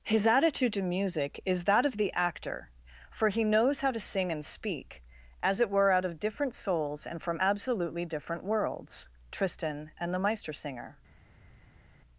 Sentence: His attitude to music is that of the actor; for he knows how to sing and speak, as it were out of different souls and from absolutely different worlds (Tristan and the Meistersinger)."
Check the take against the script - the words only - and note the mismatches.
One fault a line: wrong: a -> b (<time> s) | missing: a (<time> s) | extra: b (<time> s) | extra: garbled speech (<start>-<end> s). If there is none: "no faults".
no faults